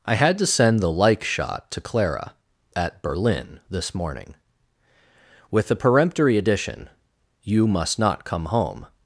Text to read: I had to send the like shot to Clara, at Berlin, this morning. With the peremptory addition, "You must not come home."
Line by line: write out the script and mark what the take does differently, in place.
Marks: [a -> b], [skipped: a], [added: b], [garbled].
I had to send the like shot to Clara, at Berlin, this morning. With the peremptory addition, "You must not come home."